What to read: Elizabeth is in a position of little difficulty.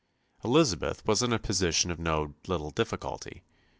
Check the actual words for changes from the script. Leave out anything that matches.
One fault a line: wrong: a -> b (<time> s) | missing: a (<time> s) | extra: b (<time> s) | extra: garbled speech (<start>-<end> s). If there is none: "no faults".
wrong: is -> was (1.1 s)
extra: no (2.0 s)